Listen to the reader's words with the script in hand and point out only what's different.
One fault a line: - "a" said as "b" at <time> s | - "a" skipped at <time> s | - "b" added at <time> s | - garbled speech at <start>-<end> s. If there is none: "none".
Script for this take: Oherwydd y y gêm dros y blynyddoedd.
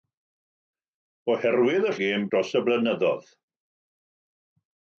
none